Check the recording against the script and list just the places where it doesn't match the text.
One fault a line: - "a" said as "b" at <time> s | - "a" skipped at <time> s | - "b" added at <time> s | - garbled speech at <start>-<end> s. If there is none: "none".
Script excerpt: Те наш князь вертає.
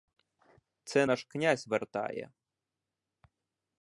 - "Те" said as "Це" at 0.8 s